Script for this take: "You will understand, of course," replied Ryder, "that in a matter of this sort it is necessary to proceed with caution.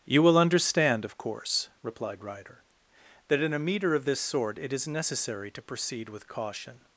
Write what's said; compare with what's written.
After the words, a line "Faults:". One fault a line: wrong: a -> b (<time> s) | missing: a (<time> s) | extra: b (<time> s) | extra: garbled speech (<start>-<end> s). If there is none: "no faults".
"You will understand, of course," replied Ryder, "that in a meter of this sort it is necessary to proceed with caution.
Faults:
wrong: matter -> meter (3.6 s)